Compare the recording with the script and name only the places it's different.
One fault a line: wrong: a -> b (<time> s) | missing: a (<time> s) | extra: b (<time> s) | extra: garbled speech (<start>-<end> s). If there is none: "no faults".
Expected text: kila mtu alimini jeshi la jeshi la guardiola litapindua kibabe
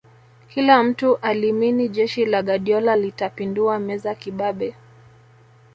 missing: jeshi la (2.4 s)
extra: meza (3.8 s)